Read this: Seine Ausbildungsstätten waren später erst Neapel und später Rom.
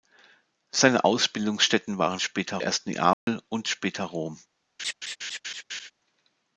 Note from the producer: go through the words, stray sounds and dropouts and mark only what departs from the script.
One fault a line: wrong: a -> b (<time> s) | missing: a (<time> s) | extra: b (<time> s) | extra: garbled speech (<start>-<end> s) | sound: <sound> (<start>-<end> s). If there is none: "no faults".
sound: dropout (3.1-3.3 s)
sound: laugh (4.8-5.9 s)